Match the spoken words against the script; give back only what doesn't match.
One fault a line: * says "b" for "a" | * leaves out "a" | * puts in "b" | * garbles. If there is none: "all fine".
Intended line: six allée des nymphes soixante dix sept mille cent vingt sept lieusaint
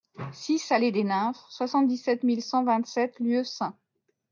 all fine